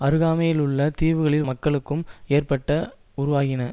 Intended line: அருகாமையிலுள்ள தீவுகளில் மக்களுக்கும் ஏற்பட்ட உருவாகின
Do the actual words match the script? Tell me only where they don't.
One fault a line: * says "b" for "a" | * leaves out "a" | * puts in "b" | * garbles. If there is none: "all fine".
all fine